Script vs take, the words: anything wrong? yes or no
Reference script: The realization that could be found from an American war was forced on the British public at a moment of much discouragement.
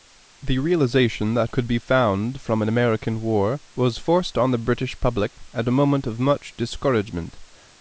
no